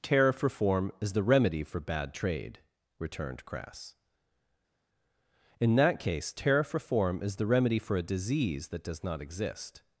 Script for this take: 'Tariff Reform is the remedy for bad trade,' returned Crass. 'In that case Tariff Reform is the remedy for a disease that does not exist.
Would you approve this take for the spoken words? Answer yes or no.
yes